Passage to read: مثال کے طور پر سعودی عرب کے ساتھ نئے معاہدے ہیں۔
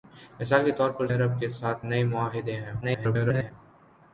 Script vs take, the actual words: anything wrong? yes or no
yes